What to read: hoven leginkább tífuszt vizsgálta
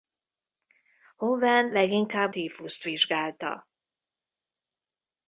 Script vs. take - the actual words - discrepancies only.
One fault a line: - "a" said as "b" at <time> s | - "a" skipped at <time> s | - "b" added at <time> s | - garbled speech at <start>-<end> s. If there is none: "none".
none